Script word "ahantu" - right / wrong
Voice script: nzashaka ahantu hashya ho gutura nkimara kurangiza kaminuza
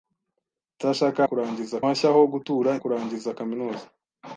wrong